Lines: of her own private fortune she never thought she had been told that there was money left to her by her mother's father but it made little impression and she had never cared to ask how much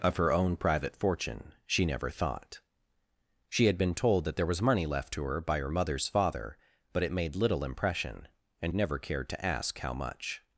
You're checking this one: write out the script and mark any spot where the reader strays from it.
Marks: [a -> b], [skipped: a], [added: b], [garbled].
of her own private fortune she never thought she had been told that there was money left to her by her mother's father but it made little impression and [skipped: she had] never cared to ask how much